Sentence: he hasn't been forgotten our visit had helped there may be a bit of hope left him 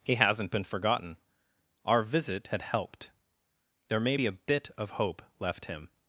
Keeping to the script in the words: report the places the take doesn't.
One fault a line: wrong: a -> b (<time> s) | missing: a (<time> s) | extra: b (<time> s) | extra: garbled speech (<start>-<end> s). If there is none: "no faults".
no faults